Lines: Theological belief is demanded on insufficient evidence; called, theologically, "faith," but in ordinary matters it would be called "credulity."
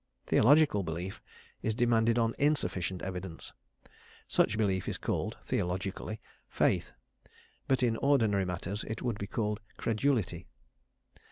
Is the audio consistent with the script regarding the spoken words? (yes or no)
no